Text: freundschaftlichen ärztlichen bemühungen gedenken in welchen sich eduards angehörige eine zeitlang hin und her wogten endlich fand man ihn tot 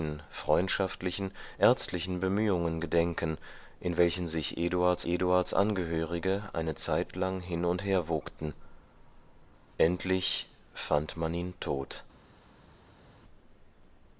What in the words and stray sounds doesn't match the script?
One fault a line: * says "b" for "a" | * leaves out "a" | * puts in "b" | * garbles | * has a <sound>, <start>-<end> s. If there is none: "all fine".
* puts in "eduards"